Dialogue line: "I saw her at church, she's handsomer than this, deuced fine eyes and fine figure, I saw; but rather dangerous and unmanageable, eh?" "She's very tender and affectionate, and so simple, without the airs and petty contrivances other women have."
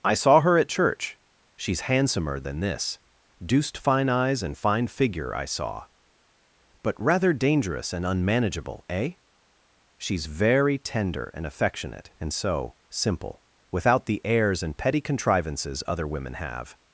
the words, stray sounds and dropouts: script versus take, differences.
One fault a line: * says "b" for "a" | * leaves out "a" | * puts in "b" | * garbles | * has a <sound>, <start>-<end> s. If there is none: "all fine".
all fine